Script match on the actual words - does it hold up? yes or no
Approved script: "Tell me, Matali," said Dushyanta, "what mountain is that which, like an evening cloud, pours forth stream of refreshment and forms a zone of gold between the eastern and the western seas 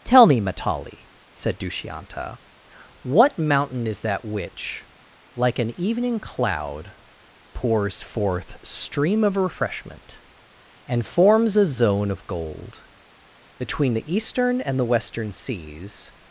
yes